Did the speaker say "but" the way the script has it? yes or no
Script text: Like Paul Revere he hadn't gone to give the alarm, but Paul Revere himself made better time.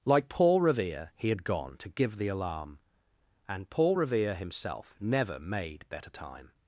no